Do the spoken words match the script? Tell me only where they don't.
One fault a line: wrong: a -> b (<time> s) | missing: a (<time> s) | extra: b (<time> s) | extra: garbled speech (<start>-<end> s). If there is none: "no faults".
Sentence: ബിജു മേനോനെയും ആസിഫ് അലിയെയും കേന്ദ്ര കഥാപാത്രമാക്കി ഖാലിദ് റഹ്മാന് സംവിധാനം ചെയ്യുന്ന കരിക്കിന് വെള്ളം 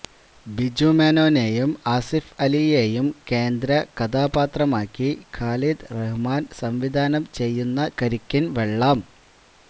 no faults